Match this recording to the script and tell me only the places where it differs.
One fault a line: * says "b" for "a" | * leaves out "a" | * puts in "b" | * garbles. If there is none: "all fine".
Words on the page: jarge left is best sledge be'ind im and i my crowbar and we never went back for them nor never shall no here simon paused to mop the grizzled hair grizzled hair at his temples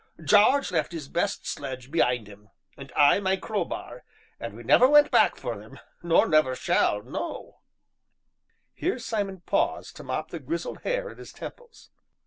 * leaves out "grizzled hair"